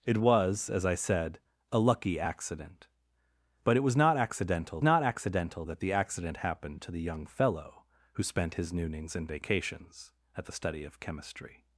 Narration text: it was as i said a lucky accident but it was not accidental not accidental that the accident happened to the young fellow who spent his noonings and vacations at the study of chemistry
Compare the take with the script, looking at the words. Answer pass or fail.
pass